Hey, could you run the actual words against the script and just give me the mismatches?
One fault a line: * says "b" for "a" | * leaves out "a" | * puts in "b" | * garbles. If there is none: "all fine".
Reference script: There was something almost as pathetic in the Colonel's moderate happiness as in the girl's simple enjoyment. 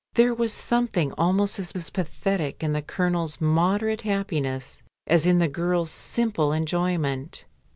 * puts in "as"